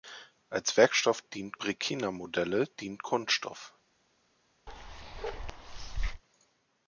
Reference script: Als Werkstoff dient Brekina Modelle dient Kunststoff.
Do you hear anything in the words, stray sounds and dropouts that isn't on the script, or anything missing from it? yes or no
yes